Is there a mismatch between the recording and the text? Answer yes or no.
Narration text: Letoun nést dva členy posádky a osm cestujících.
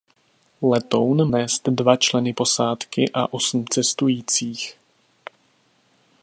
no